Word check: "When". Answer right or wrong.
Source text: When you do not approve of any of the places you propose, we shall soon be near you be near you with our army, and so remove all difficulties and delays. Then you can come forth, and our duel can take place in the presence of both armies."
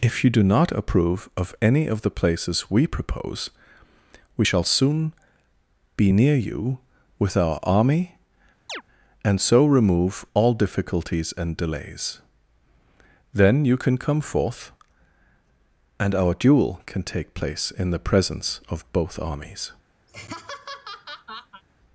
wrong